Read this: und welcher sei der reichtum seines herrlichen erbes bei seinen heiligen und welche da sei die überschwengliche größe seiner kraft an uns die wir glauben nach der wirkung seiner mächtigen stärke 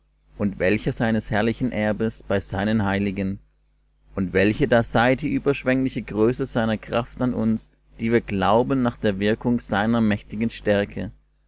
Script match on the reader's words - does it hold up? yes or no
no